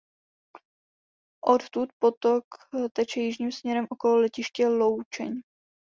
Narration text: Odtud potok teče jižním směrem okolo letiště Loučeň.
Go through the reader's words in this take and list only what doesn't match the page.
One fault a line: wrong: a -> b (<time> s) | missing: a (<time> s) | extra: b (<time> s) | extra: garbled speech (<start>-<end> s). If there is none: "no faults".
no faults